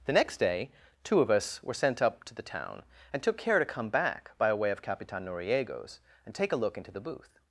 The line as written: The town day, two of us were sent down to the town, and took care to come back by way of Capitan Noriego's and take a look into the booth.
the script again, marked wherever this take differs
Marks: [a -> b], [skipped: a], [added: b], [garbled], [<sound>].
The [town -> next] day, two of us were sent [down -> up] to the town, and took care to come back by way of Capitan Noriego's and take a look into the booth.